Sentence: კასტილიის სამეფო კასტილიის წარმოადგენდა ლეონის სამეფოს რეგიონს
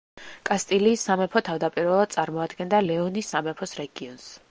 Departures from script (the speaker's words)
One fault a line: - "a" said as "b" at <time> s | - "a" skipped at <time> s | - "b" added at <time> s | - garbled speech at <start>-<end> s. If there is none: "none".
- "კასტილიის" said as "თავდაპირველად" at 1.5 s